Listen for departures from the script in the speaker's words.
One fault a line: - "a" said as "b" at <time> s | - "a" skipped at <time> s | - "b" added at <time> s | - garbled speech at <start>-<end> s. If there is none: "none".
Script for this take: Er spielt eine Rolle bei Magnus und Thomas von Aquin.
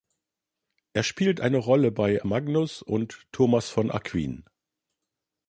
none